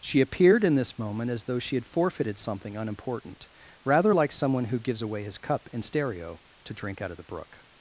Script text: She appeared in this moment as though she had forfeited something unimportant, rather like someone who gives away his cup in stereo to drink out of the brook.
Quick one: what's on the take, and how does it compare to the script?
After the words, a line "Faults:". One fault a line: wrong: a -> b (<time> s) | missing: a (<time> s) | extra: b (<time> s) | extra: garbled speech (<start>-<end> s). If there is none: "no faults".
She appeared in this moment as though she had forfeited something unimportant, rather like someone who gives away his cup in stereo to drink out of the brook.
Faults:
no faults